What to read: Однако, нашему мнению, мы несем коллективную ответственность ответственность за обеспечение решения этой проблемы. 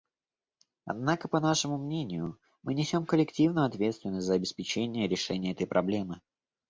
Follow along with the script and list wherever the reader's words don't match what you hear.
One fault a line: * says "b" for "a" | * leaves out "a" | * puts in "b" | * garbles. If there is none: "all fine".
* puts in "по"
* leaves out "ответственность"